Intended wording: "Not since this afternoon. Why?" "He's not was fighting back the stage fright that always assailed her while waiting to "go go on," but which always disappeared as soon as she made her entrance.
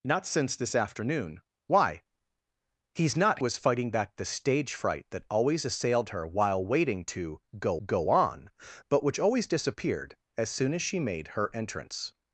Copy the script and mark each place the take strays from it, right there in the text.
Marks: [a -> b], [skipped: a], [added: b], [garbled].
"Not since this afternoon. Why?" "He's not was fighting back the stage fright that always assailed her while waiting to "go go on," but which always disappeared as soon as she made her entrance.